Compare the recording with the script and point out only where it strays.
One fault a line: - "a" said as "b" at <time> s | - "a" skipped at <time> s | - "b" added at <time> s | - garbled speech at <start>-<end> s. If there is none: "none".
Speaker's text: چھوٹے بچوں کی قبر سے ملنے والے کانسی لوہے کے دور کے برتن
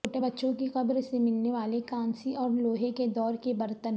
- "اور" added at 2.3 s